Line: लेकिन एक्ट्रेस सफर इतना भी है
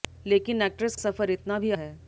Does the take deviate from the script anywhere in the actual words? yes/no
no